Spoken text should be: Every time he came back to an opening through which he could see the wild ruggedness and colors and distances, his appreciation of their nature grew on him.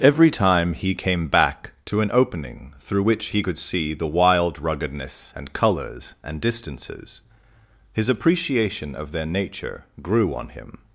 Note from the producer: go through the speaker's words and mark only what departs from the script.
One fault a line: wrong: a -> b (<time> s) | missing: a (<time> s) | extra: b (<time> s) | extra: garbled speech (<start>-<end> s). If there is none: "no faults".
no faults